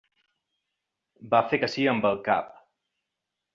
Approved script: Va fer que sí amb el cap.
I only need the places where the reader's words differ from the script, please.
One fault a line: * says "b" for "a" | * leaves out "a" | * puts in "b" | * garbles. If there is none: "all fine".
all fine